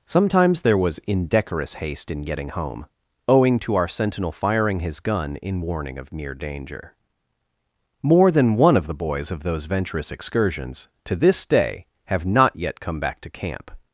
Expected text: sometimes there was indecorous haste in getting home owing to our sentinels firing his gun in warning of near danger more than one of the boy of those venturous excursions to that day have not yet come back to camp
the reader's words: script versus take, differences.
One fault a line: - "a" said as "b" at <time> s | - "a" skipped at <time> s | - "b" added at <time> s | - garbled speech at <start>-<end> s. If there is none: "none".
- "sentinels" said as "sentinel" at 3.9 s
- "boy" said as "boys" at 8.9 s
- "that" said as "this" at 11.1 s